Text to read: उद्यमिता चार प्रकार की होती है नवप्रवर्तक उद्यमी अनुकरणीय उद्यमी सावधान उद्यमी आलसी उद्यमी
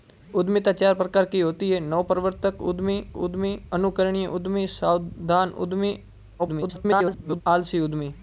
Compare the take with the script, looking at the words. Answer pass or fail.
fail